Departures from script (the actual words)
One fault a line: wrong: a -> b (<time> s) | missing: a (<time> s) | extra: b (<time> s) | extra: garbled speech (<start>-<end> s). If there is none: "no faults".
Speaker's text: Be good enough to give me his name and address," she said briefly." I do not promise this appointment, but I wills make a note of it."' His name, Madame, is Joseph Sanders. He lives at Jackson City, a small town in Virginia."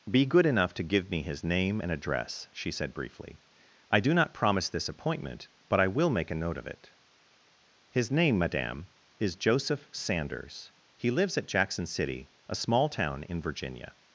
wrong: wills -> will (5.9 s)